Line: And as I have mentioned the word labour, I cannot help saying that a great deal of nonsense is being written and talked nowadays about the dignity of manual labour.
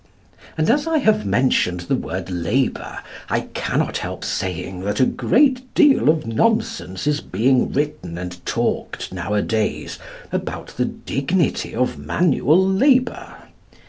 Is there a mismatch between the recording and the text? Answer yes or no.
no